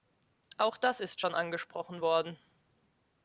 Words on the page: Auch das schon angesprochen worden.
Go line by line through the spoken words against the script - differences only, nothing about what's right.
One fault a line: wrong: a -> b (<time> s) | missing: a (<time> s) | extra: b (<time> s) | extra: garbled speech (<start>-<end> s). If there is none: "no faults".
extra: ist (1.0 s)